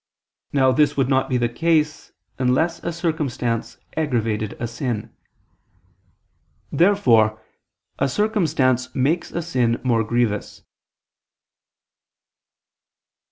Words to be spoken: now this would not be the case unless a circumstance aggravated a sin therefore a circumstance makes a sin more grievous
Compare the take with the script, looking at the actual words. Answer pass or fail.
pass